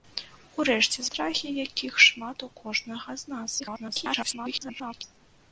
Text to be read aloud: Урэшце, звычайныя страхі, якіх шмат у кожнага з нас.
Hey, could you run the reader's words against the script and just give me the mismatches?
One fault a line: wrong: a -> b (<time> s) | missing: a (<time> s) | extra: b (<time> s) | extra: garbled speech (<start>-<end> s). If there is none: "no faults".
missing: звычайныя (1.0 s)
extra: garbled speech (3.6-5.0 s)